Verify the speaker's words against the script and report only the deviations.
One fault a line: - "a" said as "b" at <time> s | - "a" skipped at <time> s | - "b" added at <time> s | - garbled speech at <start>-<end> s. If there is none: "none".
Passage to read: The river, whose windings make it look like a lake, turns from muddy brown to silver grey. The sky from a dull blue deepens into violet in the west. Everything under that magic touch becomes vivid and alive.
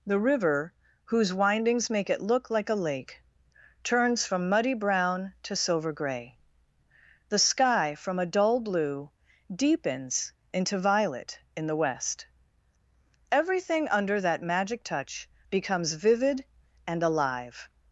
none